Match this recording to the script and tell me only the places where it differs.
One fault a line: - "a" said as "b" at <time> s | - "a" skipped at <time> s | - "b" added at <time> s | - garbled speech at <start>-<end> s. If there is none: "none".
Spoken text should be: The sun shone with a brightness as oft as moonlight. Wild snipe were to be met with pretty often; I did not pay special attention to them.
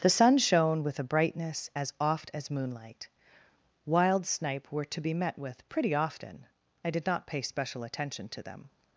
none